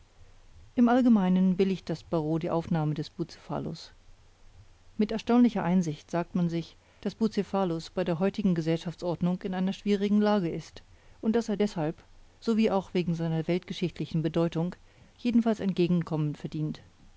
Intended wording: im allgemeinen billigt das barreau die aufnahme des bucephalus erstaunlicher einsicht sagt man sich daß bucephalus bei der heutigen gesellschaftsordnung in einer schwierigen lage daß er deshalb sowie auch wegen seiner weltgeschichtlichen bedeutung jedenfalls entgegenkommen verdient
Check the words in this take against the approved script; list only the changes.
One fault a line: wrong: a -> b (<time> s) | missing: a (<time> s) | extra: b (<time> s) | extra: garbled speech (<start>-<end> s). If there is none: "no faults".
extra: mit (5.0 s)
extra: ist und (10.5 s)